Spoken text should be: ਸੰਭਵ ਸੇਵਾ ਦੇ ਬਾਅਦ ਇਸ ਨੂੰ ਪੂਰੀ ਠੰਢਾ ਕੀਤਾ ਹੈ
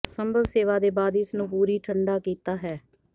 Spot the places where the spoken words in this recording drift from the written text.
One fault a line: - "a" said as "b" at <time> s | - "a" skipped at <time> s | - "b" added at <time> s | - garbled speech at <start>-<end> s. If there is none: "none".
none